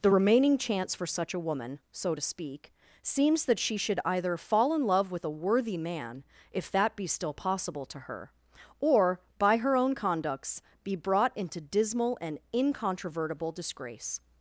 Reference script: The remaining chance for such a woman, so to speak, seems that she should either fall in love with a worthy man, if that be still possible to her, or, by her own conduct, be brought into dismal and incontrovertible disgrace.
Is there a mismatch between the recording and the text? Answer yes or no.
yes